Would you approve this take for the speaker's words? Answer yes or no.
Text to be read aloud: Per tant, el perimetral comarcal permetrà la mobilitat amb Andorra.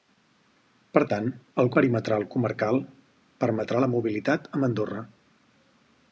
yes